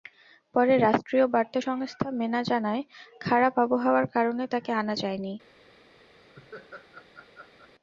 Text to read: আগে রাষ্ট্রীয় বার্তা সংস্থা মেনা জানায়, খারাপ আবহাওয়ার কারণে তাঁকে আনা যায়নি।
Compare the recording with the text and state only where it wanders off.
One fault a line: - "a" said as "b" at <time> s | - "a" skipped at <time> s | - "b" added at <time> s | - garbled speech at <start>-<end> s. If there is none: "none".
- "আগে" said as "পরে" at 0.6 s